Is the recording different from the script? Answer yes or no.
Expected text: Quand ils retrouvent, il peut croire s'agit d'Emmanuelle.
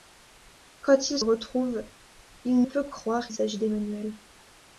no